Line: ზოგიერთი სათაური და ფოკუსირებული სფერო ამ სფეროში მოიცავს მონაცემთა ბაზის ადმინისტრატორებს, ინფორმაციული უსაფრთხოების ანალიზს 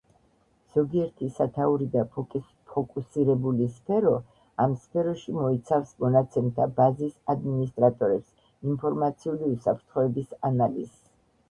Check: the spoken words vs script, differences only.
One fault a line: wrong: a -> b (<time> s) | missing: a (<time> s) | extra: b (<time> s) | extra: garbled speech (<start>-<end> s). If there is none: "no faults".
no faults